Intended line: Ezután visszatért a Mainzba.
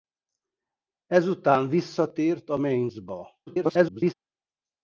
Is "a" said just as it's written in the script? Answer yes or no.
yes